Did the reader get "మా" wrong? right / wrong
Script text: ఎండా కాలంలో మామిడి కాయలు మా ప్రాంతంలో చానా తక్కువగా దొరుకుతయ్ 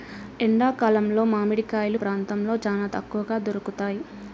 wrong